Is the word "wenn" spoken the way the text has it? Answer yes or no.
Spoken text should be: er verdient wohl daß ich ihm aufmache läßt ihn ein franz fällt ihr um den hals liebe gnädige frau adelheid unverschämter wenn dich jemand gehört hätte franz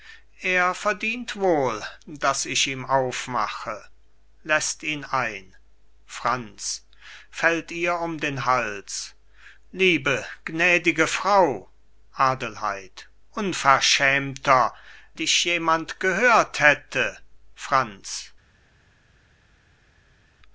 no